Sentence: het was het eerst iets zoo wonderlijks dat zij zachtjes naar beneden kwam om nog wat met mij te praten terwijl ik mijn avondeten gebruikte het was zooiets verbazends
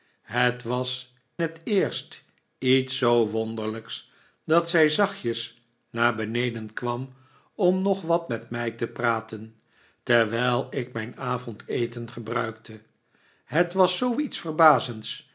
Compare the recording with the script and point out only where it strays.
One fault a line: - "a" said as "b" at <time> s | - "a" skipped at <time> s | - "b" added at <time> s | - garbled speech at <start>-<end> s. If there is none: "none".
none